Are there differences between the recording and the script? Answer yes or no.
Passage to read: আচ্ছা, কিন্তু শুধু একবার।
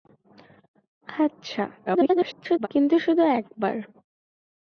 yes